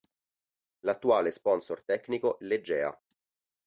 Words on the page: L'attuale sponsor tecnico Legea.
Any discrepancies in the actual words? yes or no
no